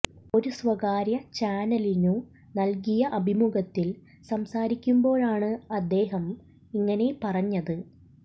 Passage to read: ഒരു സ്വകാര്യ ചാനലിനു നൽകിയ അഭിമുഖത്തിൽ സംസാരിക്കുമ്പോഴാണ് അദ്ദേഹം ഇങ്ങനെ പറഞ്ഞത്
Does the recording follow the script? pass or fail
pass